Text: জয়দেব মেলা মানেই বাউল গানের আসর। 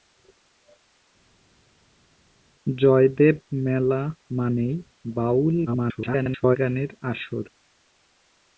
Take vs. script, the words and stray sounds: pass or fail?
fail